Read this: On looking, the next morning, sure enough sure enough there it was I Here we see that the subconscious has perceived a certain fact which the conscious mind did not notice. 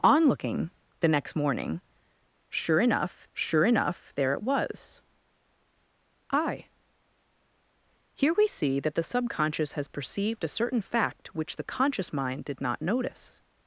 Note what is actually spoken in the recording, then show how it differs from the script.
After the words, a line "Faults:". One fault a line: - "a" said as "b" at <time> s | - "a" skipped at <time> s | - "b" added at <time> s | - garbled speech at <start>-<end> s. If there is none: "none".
On looking, the next morning, sure enough sure enough there it was I Here we see that the subconscious has perceived a certain fact which the conscious mind did not notice.
Faults:
none